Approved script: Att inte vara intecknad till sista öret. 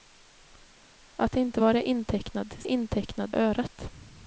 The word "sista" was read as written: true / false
false